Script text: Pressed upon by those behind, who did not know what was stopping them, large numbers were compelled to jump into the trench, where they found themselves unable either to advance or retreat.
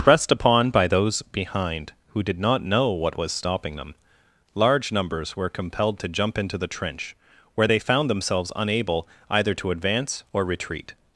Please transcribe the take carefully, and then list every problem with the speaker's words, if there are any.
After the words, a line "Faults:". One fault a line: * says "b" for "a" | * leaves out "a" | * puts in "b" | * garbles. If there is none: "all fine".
Pressed upon by those behind, who did not know what was stopping them, large numbers were compelled to jump into the trench, where they found themselves unable either to advance or retreat.
Faults:
all fine